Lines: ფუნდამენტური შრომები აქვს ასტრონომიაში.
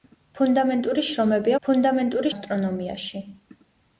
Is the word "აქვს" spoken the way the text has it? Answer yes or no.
no